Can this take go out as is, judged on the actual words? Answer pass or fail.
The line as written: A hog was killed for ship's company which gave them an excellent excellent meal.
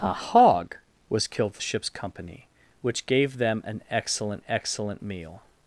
pass